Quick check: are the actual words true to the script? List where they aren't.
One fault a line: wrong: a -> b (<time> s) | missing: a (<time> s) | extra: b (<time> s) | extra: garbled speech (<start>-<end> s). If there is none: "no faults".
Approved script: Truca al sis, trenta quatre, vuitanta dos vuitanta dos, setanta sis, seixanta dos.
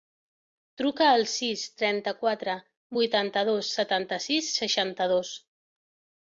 missing: vuitanta dos (3.7 s)